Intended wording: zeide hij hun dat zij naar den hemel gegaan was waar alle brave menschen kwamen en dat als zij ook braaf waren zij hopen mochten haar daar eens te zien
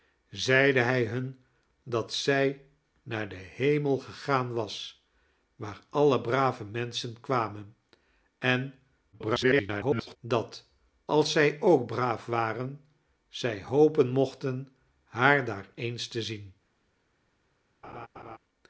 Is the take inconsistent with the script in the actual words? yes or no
yes